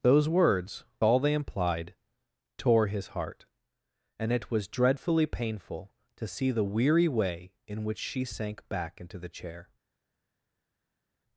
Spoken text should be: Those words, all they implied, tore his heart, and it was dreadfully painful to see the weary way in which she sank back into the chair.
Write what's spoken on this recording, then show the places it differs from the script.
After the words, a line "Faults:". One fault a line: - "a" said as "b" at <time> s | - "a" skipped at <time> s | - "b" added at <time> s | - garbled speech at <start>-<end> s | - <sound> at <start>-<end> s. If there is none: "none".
Those words, all they implied, tore his heart, and it was dreadfully painful to see the weary way in which she sank back into the chair.
Faults:
none